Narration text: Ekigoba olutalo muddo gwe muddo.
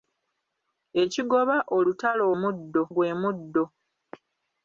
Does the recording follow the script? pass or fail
pass